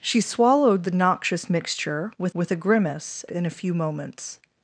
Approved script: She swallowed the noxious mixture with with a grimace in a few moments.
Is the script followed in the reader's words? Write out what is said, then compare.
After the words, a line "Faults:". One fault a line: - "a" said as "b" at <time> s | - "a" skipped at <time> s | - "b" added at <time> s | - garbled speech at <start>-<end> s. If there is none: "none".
She swallowed the noxious mixture with with a grimace in a few moments.
Faults:
none